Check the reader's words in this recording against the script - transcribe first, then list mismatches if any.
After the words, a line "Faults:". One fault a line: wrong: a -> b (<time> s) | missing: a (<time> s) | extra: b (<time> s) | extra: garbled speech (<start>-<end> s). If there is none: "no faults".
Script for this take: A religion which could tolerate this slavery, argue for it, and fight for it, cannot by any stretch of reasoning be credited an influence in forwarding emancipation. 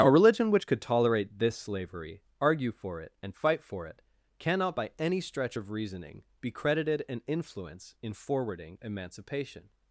A religion which could tolerate this slavery, argue for it, and fight for it, cannot by any stretch of reasoning be credited an influence in forwarding emancipation.
Faults:
no faults